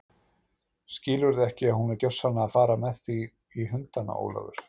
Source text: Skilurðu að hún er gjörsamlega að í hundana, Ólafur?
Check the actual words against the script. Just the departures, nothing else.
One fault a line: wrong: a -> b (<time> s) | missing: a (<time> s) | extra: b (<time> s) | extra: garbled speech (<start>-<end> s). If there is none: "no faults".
extra: ekki (1.5 s)
extra: fara með þig (2.6 s)